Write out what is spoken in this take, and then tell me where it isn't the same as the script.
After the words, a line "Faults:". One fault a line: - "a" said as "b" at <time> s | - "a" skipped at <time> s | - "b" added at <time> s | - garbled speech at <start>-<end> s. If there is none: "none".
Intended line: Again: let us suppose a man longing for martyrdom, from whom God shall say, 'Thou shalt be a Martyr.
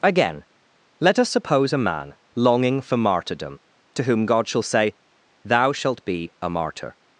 Again: let us suppose a man longing for martyrdom, to whom God shall say, 'Thou shalt be a Martyr.
Faults:
- "from" said as "to" at 3.9 s